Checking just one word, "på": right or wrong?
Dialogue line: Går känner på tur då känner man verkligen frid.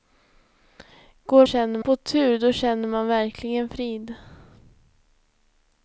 right